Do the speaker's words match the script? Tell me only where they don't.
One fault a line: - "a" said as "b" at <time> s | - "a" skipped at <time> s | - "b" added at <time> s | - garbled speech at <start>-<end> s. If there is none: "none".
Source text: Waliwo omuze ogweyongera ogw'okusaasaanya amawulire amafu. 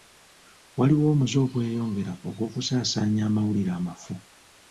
none